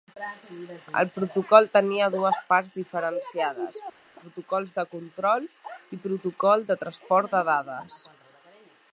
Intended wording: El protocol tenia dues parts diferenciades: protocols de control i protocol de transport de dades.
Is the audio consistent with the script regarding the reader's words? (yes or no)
yes